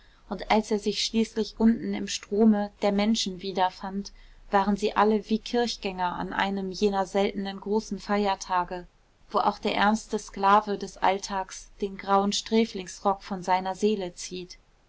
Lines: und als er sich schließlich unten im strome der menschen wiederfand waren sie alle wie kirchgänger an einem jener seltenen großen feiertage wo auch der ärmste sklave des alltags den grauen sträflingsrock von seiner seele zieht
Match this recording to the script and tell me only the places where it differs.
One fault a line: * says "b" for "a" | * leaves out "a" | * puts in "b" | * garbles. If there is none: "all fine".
all fine